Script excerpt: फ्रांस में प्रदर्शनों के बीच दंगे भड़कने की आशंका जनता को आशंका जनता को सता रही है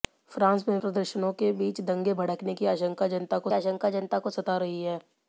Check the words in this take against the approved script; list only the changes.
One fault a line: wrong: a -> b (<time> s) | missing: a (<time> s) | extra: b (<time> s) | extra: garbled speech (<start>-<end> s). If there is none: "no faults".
no faults